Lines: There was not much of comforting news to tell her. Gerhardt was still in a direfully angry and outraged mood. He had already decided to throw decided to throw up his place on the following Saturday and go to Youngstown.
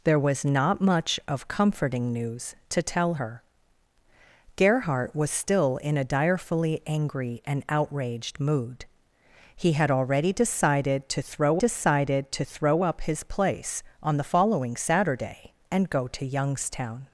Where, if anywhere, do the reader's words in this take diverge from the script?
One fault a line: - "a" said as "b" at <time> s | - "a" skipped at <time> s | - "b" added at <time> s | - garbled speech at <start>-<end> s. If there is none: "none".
none